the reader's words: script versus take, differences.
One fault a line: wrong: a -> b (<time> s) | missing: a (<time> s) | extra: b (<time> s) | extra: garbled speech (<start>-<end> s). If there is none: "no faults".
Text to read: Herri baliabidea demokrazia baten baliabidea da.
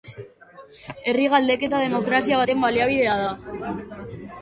wrong: baliabidea -> galdeketa (1.4 s)